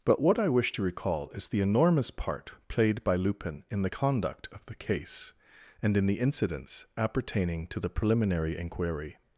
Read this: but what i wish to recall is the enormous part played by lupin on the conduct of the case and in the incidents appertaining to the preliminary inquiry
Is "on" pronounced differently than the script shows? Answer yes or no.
yes